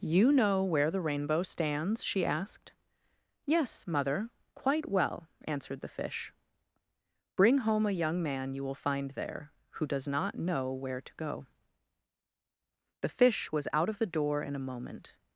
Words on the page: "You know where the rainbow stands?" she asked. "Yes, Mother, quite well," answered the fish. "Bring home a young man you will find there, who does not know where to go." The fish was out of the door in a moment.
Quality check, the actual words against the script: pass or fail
pass